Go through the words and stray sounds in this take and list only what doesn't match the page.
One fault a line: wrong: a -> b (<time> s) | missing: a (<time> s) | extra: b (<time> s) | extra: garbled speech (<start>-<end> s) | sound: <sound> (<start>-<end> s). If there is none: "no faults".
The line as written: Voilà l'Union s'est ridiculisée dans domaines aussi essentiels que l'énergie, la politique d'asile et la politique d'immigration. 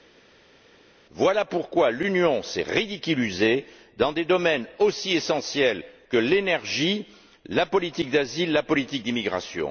extra: pourquoi (1.4 s)
extra: des (4.1 s)